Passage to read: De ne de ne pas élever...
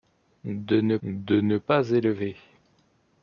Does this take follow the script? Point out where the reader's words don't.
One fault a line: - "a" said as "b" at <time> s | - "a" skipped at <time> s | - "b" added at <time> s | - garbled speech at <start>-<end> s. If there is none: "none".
none